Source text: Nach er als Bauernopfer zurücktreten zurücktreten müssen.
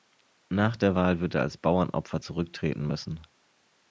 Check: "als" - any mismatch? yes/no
no